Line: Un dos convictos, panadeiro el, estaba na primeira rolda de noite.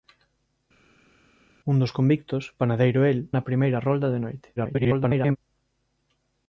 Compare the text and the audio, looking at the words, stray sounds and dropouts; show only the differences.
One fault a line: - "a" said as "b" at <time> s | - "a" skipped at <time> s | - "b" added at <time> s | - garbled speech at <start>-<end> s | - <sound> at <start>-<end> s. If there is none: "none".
- "estaba" skipped at 3.2 s
- garbled speech at 4.6-5.4 s